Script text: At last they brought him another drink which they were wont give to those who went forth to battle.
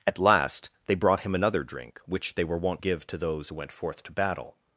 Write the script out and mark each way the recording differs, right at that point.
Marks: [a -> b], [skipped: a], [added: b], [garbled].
At last they brought him another drink which they were wont give to those who went forth to battle.